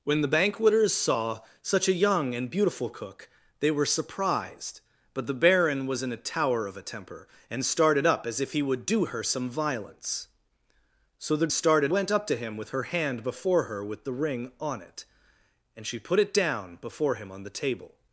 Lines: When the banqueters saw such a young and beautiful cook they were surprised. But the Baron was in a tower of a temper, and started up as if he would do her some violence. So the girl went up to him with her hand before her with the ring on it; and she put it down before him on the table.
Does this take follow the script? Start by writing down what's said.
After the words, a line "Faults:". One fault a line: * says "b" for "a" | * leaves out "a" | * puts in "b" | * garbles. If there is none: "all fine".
When the banqueters saw such a young and beautiful cook they were surprised. But the Baron was in a tower of a temper, and started up as if he would do her some violence. So the started went up to him with her hand before her with the ring on it; and she put it down before him on the table.
Faults:
* says "started" for "girl"